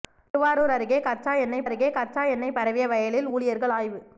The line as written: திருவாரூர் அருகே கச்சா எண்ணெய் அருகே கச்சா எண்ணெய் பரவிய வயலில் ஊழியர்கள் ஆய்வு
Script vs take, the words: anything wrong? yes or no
no